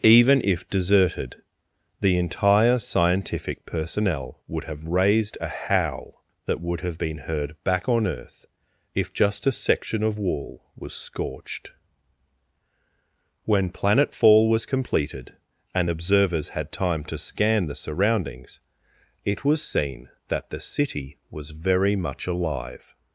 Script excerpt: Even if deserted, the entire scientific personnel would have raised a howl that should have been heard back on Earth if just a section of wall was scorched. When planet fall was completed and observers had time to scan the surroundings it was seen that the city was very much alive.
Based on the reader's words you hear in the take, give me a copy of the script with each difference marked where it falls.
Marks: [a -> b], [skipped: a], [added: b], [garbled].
Even if deserted, the entire scientific personnel would have raised a howl that [should -> would] have been heard back on Earth if just a section of wall was scorched. When planet fall was completed and observers had time to scan the surroundings it was seen that the city was very much alive.